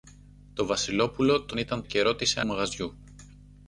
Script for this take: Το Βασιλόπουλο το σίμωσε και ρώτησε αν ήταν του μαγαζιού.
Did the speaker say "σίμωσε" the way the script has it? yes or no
no